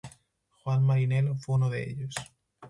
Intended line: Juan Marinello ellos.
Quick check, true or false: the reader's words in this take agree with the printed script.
false